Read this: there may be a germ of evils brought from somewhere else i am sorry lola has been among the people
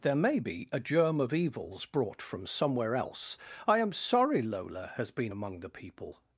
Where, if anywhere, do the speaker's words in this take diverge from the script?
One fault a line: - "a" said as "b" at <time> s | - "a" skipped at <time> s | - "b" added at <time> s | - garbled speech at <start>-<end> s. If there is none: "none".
none